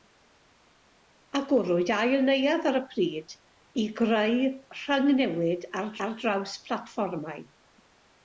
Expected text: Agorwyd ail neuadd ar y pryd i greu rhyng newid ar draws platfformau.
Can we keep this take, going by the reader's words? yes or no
no